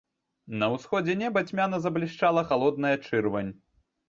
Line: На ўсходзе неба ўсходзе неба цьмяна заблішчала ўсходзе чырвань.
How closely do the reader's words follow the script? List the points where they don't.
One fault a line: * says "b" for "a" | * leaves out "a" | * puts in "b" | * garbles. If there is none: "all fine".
* leaves out "ўсходзе неба"
* says "халодная" for "ўсходзе"